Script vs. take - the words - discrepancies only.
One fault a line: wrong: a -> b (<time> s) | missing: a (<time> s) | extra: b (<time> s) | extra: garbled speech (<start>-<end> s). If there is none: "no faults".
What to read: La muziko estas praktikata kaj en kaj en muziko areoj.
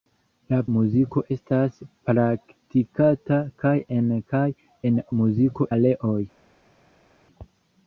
no faults